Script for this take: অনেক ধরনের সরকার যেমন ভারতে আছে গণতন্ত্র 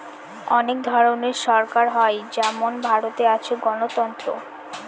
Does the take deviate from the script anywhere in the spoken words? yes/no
yes